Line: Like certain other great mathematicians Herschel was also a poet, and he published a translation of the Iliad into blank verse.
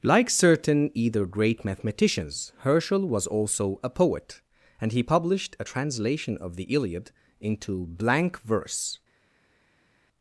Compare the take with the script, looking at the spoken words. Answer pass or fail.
fail